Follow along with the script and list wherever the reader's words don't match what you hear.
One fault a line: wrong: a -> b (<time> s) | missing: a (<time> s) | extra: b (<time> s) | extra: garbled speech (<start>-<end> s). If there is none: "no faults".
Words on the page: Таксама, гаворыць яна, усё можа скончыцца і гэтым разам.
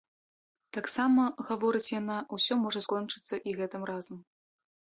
no faults